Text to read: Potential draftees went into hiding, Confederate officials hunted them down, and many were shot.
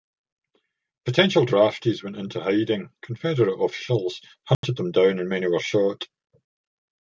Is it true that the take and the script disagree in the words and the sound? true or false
true